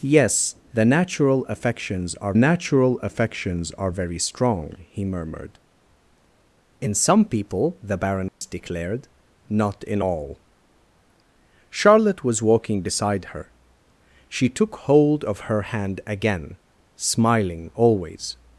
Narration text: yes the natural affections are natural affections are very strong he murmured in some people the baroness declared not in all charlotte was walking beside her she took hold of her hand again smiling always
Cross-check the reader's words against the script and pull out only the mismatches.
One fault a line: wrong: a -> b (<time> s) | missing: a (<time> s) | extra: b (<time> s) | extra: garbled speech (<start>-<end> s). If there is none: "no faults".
no faults